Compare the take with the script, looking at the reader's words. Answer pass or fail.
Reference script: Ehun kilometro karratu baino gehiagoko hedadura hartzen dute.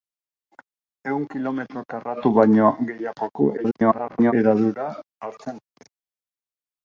fail